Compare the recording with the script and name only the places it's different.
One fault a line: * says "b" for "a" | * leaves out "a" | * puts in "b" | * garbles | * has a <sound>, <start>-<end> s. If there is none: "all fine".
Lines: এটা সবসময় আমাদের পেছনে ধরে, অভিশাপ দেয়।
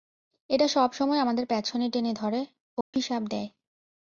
* puts in "টেনে"
* has a dropout, 2.8-2.9 s